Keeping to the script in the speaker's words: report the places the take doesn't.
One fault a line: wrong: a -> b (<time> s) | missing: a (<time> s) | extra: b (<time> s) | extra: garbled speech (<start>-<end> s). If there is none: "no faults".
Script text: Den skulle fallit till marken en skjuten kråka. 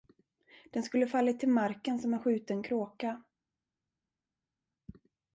extra: som (2.0 s)